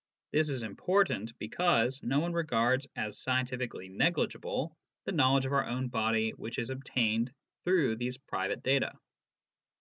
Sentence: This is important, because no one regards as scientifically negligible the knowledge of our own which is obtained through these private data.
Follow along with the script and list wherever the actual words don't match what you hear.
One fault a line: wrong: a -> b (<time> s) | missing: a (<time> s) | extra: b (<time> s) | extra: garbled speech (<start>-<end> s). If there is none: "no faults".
extra: body (5.9 s)